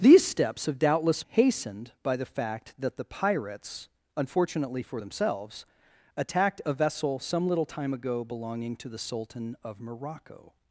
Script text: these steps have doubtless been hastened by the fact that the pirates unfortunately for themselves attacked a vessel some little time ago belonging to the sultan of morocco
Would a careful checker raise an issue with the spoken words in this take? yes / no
yes